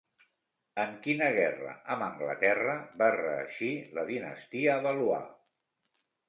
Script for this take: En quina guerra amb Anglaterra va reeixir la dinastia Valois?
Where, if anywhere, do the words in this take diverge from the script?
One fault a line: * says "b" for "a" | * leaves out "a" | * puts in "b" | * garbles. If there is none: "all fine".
all fine